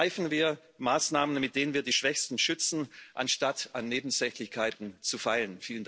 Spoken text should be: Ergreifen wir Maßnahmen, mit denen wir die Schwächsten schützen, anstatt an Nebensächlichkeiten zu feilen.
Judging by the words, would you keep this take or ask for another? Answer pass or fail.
pass